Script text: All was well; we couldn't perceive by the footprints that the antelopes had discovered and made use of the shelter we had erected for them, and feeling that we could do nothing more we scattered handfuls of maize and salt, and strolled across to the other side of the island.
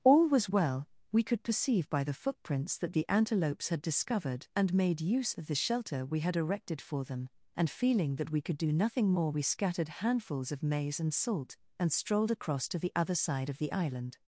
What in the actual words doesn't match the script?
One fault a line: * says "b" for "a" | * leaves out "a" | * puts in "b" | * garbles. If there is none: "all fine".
* says "could" for "couldn't"